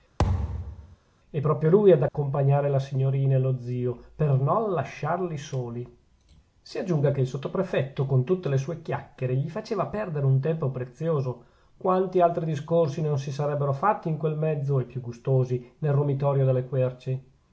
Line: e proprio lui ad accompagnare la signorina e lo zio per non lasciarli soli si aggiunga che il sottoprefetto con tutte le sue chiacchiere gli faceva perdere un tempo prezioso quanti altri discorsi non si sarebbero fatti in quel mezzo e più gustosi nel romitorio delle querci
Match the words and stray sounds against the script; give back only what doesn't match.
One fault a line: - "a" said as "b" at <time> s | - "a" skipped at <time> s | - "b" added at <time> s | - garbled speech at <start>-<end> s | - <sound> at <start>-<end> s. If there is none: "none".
- thud at 0.2-1.0 s
- dropout at 2.1-2.1 s